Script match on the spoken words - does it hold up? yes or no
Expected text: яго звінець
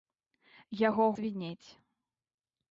yes